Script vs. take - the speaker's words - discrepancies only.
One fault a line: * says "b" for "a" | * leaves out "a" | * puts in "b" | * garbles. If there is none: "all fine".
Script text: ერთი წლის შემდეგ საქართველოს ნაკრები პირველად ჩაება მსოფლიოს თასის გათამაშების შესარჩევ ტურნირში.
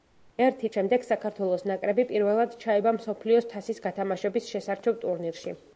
* leaves out "წლის"